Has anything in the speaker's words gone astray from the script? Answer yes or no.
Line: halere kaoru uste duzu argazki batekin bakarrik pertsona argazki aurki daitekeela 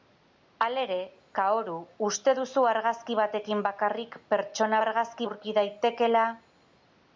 no